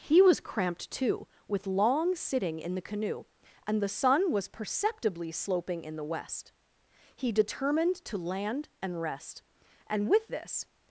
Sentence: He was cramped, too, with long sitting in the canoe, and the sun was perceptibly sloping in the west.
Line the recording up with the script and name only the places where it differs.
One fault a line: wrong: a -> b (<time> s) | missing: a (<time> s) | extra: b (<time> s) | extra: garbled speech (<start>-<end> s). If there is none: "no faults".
extra: He determined to land and rest and with this (7.2 s)